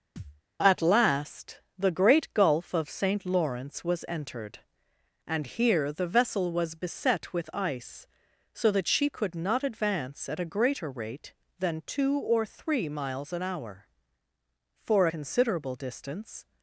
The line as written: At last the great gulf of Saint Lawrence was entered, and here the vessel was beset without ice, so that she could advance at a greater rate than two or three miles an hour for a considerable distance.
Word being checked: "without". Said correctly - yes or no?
no